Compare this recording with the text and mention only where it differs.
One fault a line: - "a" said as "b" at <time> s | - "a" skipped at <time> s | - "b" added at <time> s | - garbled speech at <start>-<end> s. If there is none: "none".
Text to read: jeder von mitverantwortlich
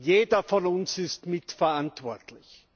- "uns ist" added at 0.7 s